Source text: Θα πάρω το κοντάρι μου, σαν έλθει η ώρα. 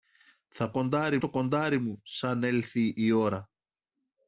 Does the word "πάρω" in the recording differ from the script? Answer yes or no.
yes